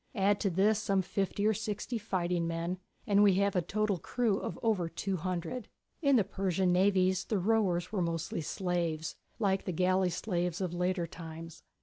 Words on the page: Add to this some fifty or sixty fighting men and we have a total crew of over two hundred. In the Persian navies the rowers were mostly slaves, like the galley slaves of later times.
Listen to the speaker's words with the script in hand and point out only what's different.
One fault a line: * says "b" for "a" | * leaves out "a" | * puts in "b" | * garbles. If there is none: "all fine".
all fine